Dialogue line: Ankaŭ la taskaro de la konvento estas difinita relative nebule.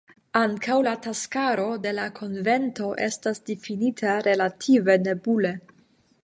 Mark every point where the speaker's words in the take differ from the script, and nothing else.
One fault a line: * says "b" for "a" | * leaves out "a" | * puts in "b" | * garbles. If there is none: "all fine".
all fine